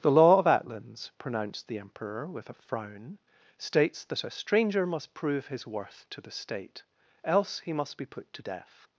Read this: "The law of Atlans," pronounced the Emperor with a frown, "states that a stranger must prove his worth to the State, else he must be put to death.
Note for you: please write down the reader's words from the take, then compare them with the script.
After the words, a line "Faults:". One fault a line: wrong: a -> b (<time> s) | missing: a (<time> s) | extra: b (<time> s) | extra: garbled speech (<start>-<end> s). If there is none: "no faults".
"The law of Atlans," pronounced the Emperor with a frown, "states that a stranger must prove his worth to the State, else he must be put to death.
Faults:
no faults